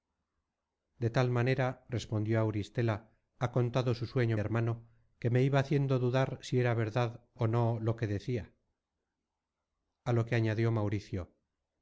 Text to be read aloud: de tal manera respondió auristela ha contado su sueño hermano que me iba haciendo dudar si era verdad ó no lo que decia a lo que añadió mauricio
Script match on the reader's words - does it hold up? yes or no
yes